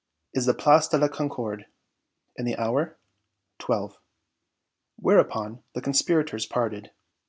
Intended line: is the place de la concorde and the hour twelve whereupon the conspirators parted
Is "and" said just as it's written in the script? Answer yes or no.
yes